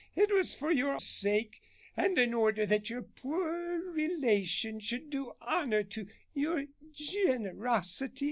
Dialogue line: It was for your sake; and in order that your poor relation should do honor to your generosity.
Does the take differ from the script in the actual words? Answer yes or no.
no